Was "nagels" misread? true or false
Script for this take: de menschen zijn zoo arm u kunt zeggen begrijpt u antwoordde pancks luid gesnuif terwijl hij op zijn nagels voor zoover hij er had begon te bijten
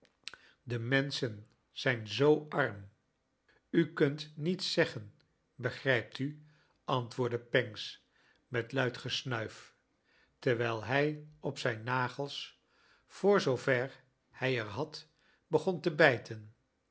false